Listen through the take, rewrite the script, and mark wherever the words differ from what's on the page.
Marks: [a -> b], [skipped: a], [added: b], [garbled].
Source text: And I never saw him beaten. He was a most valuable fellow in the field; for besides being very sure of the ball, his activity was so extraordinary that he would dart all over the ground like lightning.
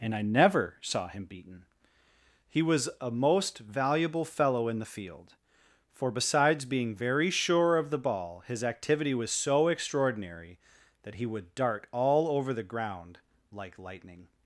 And I never saw him beaten. He was a most valuable fellow in the field; for besides being very sure of the ball, his activity was so extraordinary that he would dart all over the ground like lightning.